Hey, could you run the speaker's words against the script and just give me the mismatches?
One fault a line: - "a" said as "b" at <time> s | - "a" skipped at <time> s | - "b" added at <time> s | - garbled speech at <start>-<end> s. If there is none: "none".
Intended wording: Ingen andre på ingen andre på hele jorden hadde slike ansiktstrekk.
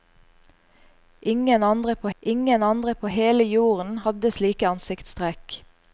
none